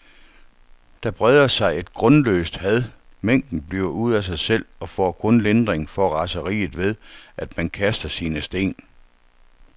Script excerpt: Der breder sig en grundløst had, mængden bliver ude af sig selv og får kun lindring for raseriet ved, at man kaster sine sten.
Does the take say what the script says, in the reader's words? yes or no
no